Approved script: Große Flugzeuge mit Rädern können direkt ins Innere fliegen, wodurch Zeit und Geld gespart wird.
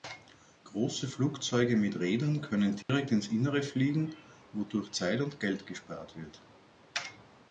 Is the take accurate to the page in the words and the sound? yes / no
no